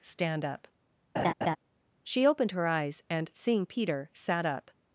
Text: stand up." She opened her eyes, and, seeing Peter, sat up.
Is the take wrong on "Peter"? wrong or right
right